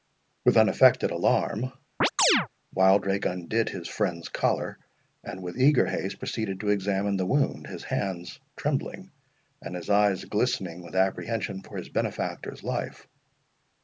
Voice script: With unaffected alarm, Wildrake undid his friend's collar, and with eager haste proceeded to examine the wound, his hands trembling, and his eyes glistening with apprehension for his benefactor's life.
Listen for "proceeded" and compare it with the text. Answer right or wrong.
right